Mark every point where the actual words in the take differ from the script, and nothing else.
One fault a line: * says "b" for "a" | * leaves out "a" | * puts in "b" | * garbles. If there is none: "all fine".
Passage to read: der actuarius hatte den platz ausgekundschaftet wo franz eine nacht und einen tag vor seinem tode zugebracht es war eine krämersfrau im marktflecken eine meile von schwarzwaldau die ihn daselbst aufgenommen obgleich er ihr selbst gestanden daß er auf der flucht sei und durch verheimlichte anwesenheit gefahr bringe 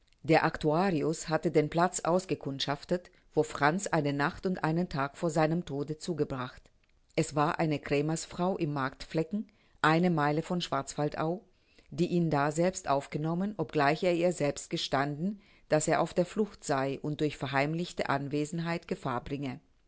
all fine